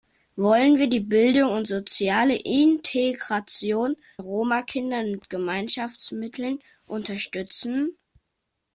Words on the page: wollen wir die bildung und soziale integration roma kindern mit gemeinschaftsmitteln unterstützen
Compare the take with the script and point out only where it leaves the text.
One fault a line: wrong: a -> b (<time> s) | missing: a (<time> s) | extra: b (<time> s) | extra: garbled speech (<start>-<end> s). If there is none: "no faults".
no faults